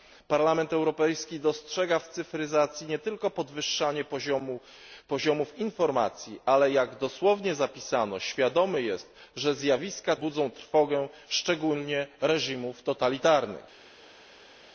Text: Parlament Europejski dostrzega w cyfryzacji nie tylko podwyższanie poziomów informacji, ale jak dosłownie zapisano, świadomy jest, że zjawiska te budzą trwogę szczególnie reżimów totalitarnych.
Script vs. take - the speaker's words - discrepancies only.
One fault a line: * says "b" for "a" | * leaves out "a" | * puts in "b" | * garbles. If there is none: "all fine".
* leaves out "te"